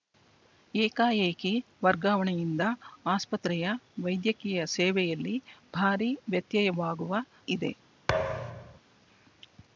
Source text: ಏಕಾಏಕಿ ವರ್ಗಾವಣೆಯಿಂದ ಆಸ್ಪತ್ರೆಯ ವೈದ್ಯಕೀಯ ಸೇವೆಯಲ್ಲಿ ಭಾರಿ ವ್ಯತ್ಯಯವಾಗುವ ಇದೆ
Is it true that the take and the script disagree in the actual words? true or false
false